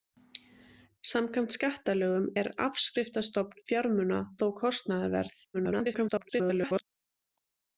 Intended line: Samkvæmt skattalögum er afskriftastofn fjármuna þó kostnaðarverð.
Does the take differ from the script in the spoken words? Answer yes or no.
yes